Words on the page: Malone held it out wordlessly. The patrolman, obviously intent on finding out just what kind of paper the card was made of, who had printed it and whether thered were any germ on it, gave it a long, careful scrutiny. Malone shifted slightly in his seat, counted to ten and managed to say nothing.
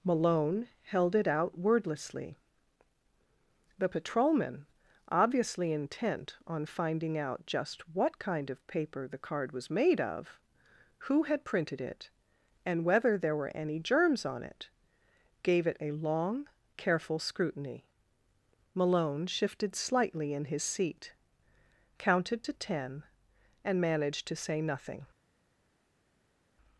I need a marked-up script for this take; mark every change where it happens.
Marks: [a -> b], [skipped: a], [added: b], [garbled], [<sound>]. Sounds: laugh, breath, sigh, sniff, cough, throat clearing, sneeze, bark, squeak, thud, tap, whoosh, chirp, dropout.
Malone held it out wordlessly. The patrolman, obviously intent on finding out just what kind of paper the card was made of, who had printed it and whether [thered -> there] were any [germ -> germs] on it, gave it a long, careful scrutiny. Malone shifted slightly in his seat, counted to ten and managed to say nothing.